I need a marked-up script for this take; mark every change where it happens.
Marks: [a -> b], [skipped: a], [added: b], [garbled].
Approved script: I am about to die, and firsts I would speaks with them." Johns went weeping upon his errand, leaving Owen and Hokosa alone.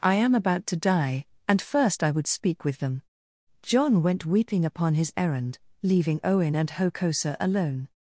I am about to die, and [firsts -> first] I would [speaks -> speak] with them." [Johns -> John] went weeping upon his errand, leaving Owen and Hokosa alone.